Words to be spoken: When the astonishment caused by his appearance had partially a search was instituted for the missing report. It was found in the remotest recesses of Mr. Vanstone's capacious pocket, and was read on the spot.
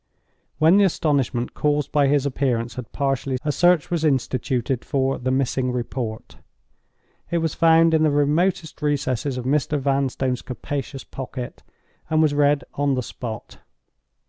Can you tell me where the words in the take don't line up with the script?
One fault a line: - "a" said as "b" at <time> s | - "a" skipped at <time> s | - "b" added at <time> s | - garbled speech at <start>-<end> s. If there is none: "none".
none